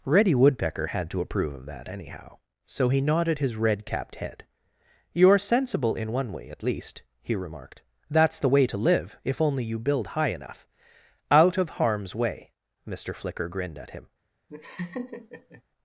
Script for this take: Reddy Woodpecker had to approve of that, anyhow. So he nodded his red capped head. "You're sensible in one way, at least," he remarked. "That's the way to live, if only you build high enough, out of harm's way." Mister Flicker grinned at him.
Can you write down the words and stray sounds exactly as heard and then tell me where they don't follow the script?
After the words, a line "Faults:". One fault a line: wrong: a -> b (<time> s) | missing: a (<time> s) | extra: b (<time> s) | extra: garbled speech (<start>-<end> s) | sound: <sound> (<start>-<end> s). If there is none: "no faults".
Reddy Woodpecker had to approve of that, anyhow. So he nodded his red capped head. "You're sensible in one way, at least," he remarked. "That's the way to live, if only you build high enough, out of harm's way." Mister Flicker grinned at him.
Faults:
sound: laugh (14.5-15.6 s)